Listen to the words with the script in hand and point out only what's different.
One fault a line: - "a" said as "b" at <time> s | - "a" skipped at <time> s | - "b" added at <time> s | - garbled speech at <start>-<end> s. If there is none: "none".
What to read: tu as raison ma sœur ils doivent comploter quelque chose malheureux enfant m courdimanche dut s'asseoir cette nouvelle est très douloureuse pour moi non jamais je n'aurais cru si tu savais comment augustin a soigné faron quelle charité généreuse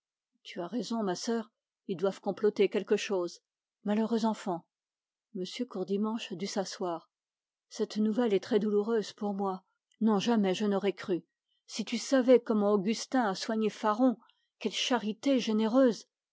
none